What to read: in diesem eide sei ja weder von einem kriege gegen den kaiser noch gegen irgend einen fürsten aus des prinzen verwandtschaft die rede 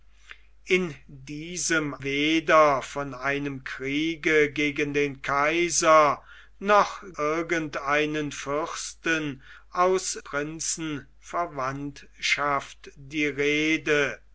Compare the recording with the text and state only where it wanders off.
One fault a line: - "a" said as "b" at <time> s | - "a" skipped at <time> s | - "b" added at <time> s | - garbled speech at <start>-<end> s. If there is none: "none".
- "eide sei ja" skipped at 1.9 s
- "gegen" skipped at 7.0 s
- "des" skipped at 10.2 s